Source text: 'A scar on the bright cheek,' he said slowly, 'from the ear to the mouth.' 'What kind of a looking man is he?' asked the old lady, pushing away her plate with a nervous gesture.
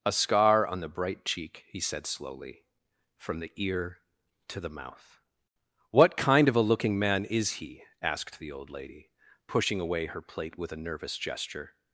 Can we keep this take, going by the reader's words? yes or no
yes